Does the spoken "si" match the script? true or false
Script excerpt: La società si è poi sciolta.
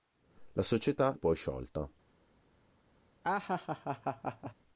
false